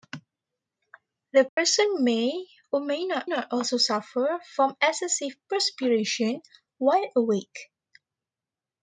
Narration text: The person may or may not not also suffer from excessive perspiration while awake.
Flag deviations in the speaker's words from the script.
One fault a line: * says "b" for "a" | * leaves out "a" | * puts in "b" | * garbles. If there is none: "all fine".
all fine